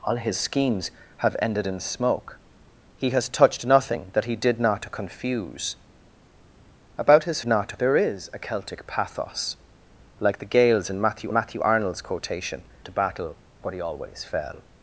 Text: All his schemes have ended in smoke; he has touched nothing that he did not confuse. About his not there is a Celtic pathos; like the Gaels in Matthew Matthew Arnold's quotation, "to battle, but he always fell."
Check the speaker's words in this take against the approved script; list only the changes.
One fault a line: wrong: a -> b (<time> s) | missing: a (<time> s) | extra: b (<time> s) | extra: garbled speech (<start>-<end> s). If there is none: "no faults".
no faults